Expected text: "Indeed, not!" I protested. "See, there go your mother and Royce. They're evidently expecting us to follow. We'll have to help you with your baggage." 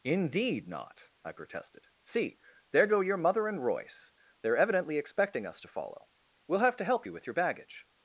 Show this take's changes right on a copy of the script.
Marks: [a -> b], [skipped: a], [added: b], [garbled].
"Indeed, not!" I protested. "See, there go your mother and Royce. They're evidently expecting us to follow. We'll have to help you with your baggage."